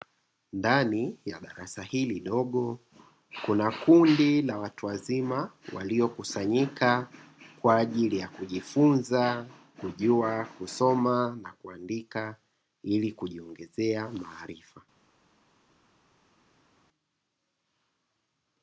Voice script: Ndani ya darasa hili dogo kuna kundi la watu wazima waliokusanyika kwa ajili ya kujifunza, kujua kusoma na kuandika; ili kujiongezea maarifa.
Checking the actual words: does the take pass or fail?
pass